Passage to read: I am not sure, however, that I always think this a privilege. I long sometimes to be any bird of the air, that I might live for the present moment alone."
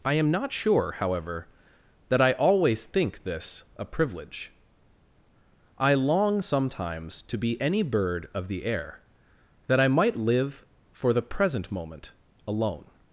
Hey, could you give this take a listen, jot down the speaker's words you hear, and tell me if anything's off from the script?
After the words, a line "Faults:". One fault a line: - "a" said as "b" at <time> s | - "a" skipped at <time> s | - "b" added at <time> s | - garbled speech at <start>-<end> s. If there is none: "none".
I am not sure, however, that I always think this a privilege. I long sometimes to be any bird of the air, that I might live for the present moment alone."
Faults:
none